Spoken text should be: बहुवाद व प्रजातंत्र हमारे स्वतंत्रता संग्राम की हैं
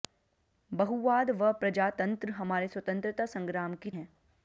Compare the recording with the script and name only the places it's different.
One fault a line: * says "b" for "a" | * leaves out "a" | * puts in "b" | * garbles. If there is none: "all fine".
all fine